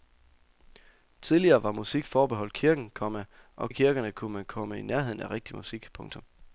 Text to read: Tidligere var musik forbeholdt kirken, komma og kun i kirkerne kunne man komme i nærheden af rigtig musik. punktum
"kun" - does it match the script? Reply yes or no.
no